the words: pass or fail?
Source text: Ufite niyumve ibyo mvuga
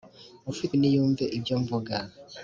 pass